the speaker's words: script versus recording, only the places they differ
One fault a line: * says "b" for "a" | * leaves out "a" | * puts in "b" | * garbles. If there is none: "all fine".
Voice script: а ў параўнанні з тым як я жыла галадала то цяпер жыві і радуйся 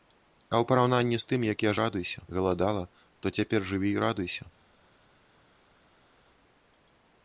* says "радуйся" for "жыла"